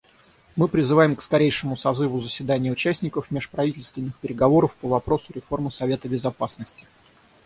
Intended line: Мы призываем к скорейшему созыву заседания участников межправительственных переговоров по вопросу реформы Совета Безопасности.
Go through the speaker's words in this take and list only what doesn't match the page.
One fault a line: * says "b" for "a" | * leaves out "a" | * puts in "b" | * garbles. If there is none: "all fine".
all fine